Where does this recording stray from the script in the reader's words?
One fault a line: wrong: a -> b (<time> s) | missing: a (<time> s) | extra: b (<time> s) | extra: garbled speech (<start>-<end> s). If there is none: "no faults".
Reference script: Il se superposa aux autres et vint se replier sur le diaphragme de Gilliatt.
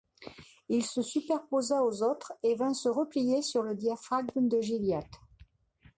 no faults